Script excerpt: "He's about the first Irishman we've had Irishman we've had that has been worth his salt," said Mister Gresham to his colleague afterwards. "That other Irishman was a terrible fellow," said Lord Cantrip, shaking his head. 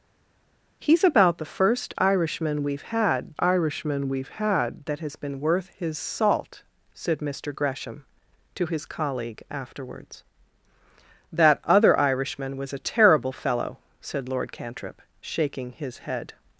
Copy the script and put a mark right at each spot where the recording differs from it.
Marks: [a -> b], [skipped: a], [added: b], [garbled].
"He's about the first Irishman we've had Irishman we've had that has been worth his salt," said Mister Gresham to his colleague afterwards. "That other Irishman was a terrible fellow," said Lord Cantrip, shaking his head.